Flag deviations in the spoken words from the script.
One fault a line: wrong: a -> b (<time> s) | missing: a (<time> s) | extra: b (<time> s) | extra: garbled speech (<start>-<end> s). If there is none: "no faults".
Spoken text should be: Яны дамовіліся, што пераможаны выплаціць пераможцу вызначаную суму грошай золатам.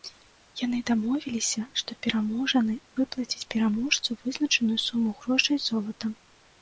no faults